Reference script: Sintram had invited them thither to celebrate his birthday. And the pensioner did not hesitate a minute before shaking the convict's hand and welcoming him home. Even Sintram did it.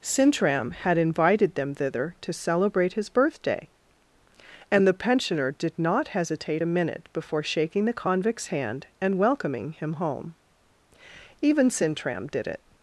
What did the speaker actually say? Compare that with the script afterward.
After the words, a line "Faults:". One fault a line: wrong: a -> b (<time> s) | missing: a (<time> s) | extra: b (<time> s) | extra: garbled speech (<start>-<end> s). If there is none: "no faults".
Sintram had invited them thither to celebrate his birthday. And the pensioner did not hesitate a minute before shaking the convict's hand and welcoming him home. Even Sintram did it.
Faults:
no faults